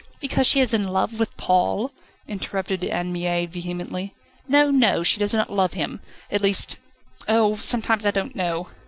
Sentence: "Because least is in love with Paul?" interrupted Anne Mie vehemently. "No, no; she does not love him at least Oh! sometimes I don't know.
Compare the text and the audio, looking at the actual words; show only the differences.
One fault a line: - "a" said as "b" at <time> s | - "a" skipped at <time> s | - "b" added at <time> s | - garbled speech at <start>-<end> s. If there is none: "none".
- "least" said as "she" at 0.5 s